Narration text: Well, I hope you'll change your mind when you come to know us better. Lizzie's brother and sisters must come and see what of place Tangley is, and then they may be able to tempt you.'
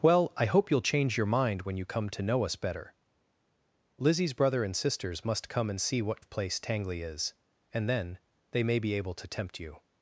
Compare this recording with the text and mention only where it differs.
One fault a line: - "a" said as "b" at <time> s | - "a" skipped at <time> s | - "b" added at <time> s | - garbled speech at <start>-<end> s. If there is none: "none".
none